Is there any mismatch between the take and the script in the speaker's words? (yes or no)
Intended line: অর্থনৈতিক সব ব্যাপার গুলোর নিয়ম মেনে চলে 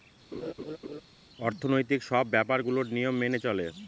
no